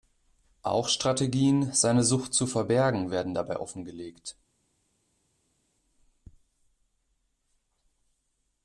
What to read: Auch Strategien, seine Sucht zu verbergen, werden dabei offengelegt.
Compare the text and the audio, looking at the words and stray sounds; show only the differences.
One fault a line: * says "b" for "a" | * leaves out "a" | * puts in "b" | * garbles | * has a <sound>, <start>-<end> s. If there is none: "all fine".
all fine